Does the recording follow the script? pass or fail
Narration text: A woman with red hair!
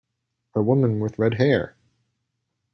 pass